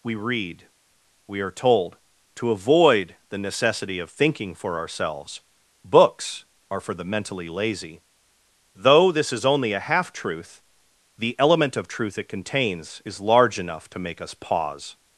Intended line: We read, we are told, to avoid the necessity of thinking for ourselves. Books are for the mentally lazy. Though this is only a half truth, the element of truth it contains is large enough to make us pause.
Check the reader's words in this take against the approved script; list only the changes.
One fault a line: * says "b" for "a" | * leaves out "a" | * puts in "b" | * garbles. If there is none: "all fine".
all fine